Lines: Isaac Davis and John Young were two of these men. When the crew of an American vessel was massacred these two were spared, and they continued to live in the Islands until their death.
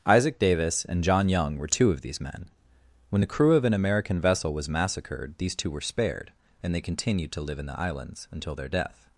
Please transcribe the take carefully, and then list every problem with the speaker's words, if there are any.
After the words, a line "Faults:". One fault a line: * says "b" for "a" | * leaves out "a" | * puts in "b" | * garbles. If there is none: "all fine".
Isaac Davis and John Young were two of these men. When the crew of an American vessel was massacred these two were spared, and they continued to live in the Islands until their death.
Faults:
all fine